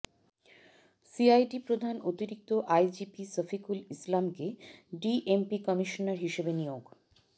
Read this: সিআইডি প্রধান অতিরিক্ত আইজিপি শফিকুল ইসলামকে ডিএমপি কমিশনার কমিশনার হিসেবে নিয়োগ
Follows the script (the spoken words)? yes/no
no